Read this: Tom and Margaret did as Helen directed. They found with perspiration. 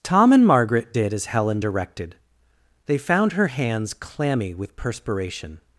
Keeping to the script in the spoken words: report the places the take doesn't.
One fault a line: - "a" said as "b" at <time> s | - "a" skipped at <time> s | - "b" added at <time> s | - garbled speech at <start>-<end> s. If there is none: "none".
- "her hands clammy" added at 3.3 s